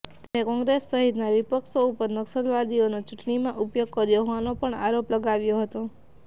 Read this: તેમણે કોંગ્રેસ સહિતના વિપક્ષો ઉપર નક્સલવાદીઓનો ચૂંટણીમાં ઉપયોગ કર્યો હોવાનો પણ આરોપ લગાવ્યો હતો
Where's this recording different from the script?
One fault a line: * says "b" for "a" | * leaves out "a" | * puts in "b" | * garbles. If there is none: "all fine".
all fine